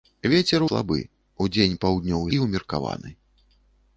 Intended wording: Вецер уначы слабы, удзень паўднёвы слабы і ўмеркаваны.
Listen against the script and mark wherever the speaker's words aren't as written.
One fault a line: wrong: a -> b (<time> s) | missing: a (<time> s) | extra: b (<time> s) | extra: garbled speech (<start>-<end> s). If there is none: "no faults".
missing: уначы (0.6 s)
missing: слабы (2.3 s)